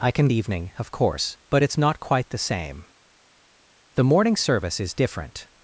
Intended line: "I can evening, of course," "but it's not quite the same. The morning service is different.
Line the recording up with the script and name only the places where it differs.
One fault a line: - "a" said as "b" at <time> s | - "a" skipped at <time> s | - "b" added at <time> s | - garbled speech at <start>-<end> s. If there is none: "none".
none